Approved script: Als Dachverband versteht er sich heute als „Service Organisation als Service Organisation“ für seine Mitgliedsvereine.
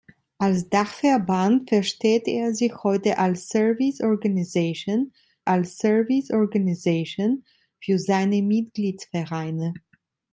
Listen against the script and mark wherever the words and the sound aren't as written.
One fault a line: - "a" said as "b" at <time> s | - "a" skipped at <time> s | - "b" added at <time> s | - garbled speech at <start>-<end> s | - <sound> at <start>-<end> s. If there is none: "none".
none